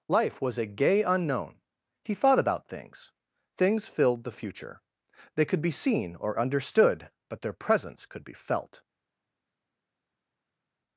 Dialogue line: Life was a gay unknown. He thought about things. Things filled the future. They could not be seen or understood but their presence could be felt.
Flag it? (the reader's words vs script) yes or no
yes